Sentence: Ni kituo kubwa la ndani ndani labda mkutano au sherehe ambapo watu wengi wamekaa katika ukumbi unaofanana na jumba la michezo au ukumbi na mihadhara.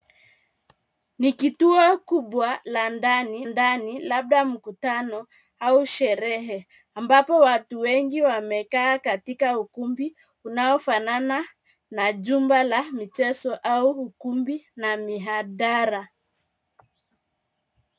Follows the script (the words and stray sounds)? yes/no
yes